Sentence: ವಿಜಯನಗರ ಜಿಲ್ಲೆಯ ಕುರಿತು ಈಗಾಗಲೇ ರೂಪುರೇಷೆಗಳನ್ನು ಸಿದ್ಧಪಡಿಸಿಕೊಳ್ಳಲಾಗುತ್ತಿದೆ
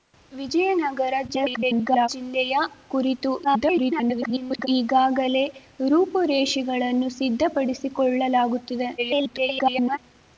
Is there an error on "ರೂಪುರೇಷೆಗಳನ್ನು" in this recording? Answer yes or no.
no